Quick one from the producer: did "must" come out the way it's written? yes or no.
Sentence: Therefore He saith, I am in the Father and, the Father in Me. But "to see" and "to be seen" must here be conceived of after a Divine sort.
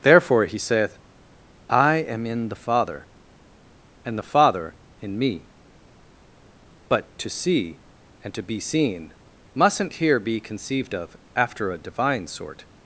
no